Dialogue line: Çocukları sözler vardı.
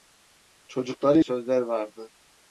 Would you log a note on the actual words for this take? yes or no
no